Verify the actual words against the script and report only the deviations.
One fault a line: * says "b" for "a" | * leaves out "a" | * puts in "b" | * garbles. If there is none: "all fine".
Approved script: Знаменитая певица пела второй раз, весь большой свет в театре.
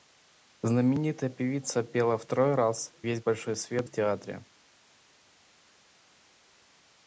all fine